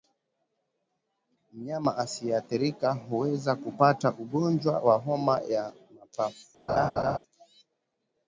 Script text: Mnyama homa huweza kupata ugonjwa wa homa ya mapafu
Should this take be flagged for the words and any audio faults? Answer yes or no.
yes